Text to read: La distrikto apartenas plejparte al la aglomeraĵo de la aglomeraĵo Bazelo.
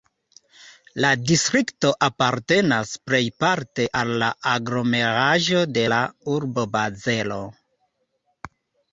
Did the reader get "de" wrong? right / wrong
right